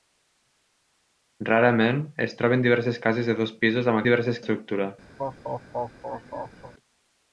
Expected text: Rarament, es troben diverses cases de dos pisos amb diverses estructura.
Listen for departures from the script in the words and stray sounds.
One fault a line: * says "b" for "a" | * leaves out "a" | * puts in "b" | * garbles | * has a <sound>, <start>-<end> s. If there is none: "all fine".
* has a laugh, 5.2-6.7 s